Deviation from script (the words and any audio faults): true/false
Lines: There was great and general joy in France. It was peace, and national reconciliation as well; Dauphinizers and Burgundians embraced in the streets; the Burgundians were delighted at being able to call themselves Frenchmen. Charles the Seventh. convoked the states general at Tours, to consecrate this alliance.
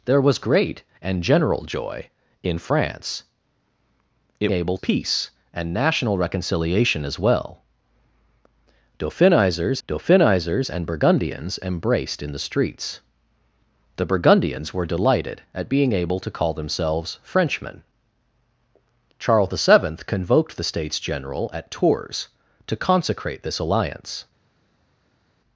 true